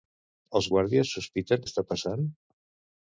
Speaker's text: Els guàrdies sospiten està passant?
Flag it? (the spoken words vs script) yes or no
no